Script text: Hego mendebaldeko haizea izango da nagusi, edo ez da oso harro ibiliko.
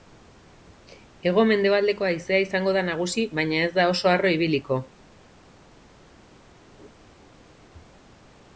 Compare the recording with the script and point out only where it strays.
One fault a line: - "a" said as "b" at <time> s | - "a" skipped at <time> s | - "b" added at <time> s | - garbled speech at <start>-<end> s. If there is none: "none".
- "edo" said as "baina" at 3.4 s